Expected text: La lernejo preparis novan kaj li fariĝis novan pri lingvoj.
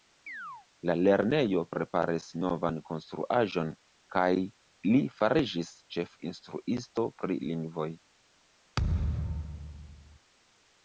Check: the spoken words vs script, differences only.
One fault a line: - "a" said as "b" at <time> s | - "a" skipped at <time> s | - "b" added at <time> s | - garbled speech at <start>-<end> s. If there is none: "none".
- "konstruaĵon" added at 2.9 s
- "novan" said as "ĉefinstruisto" at 6.0 s